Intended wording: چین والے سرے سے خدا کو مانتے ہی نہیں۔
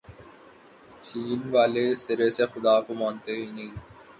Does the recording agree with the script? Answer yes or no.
yes